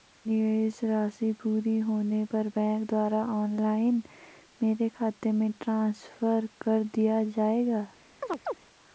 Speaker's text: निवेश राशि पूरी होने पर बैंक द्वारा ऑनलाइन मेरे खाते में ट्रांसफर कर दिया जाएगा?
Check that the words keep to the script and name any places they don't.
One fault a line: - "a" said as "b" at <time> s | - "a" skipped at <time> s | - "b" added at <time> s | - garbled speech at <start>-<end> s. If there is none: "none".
none